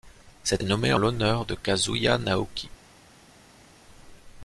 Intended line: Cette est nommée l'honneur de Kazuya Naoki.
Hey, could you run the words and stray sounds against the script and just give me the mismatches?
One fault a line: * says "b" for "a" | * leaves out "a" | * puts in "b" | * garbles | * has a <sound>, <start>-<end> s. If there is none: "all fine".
all fine